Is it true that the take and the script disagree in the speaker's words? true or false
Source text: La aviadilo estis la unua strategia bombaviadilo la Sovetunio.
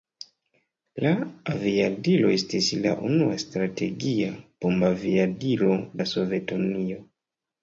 false